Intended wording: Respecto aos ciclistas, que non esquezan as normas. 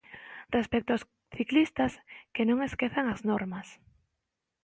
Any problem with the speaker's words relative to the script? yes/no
no